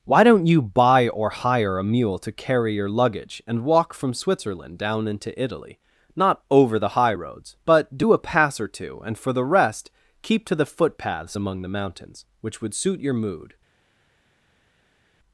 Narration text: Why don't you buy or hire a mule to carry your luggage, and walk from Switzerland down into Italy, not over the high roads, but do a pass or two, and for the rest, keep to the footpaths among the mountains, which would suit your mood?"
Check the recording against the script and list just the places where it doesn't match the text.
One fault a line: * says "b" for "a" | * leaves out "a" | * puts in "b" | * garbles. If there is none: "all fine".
all fine